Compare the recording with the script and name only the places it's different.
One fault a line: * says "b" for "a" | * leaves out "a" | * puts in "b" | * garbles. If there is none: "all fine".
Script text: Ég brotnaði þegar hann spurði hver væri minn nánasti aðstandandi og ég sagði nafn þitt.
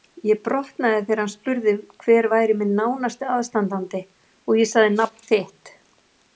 all fine